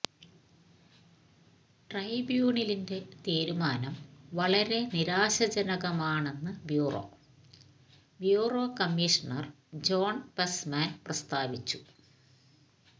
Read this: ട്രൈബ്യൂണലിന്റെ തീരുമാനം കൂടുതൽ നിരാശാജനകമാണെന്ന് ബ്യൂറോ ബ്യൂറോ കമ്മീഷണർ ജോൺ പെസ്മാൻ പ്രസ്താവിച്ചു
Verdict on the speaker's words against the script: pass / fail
fail